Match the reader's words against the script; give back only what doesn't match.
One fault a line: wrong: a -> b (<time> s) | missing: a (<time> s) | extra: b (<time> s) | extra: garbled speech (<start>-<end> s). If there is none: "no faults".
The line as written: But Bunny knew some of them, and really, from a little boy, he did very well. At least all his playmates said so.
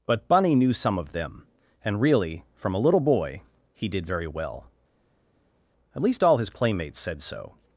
no faults